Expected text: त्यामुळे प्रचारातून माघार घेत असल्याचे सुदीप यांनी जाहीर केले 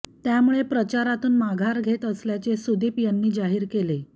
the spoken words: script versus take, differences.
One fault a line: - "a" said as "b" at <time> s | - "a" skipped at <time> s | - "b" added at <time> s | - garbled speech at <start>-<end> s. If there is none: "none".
none